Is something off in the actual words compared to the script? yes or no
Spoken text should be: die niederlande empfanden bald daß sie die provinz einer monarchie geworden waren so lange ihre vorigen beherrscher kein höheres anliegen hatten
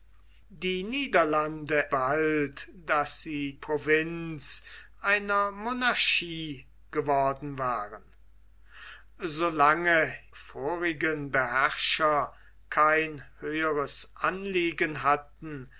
yes